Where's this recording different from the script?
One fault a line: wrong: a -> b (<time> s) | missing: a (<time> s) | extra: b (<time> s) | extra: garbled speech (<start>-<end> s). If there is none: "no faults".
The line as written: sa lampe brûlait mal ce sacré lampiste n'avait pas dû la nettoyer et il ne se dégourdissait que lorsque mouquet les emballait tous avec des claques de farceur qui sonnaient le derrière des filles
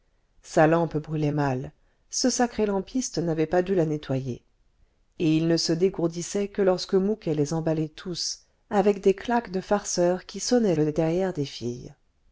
no faults